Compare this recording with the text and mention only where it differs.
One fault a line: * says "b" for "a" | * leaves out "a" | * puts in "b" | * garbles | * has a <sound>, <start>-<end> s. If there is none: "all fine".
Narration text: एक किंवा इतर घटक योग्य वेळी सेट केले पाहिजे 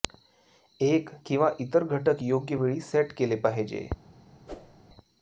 * has a whoosh, 4.5-4.8 s